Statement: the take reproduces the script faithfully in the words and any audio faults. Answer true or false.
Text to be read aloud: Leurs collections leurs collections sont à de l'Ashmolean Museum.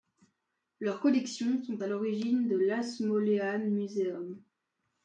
false